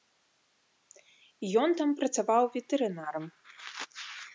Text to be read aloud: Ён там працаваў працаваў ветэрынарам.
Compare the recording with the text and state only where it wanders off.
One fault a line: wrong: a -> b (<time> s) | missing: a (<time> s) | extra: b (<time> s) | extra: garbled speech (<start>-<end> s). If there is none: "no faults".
missing: працаваў (2.4 s)